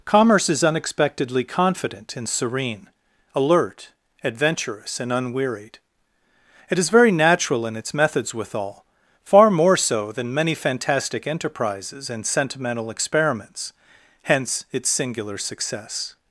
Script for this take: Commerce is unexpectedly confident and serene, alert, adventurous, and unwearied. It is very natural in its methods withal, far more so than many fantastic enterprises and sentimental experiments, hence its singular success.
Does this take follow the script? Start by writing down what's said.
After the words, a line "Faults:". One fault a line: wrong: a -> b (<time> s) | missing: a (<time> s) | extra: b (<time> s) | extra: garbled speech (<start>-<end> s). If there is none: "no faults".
Commerce is unexpectedly confident and serene, alert, adventurous, and unwearied. It is very natural in its methods withal, far more so than many fantastic enterprises and sentimental experiments, hence its singular success.
Faults:
no faults